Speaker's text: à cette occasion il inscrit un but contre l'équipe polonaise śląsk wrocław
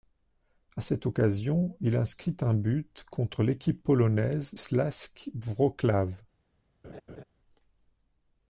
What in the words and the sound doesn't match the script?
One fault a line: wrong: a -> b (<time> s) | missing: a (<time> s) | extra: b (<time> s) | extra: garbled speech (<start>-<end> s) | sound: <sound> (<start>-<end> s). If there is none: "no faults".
sound: laugh (6.8-7.2 s)